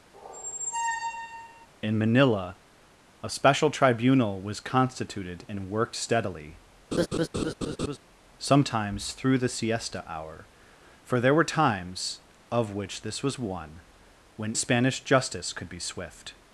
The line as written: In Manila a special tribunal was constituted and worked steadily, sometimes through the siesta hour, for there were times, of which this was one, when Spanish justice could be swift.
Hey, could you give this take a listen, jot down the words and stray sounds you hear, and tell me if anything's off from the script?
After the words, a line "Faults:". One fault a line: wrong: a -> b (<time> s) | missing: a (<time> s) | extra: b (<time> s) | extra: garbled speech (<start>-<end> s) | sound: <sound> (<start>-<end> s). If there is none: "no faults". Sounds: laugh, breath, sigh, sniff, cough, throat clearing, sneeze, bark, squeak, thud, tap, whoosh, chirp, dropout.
In Manila a special tribunal was constituted and worked steadily, sometimes through the siesta hour, for there were times, of which this was one, when Spanish justice could be swift.
Faults:
sound: squeak (0.1-1.7 s)
sound: laugh (6.9-8.0 s)